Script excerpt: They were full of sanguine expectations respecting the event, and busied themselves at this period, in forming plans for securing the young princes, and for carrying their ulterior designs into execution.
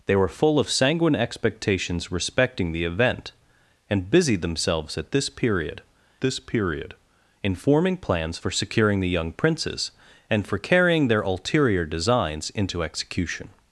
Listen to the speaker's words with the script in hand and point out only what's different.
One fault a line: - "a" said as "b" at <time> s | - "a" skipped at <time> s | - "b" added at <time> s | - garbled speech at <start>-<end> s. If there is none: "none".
- "this period" added at 6.2 s